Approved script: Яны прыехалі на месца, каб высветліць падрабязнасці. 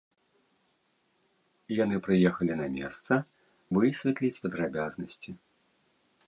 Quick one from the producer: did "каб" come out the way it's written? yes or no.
no